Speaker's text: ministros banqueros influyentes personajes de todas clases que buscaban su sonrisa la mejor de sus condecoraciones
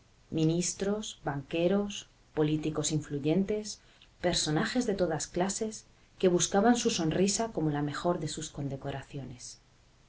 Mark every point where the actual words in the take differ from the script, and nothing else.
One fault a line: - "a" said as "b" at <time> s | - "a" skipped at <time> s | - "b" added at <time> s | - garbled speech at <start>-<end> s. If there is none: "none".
- "políticos" added at 2.3 s
- "como" added at 7.5 s